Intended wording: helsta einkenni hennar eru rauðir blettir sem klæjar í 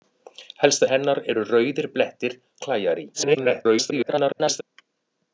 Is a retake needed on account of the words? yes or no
yes